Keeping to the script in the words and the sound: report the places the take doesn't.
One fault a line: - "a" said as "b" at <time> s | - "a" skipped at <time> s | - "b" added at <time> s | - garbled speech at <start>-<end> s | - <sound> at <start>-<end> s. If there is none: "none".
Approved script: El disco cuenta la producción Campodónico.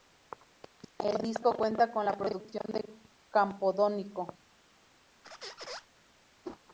- "con" added at 1.9 s
- "de" added at 2.7 s
- squeak at 5.2-5.9 s
- whoosh at 6.4-6.6 s